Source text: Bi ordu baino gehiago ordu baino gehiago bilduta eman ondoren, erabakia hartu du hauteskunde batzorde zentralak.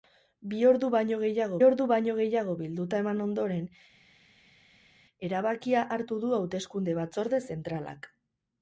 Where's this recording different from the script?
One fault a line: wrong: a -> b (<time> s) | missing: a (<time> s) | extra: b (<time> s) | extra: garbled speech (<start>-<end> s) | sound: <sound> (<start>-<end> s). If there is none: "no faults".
no faults